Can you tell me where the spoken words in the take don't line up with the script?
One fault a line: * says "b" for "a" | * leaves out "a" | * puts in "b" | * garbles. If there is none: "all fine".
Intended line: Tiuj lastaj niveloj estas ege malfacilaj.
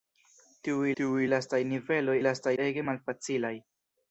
* puts in "tiuj"
* says "lastaj" for "estas"